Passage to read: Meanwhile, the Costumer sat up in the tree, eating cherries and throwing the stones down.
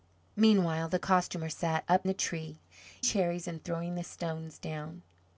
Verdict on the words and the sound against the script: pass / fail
fail